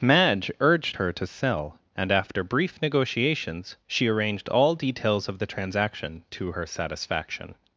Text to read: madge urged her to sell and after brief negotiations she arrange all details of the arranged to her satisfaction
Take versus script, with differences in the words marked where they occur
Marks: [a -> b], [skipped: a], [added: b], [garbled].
madge urged her to sell and after brief negotiations she [arrange -> arranged] all details of the [arranged -> transaction] to her satisfaction